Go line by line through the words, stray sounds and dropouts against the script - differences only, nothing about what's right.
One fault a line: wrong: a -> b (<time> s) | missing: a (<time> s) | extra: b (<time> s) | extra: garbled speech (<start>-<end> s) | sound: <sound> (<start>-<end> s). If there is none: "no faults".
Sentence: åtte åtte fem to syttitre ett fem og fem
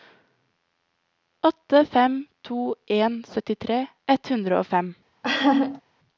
missing: åtte (1.9 s)
extra: en (2.9 s)
wrong: fem -> hundre (4.3 s)
sound: laugh (5.2-5.8 s)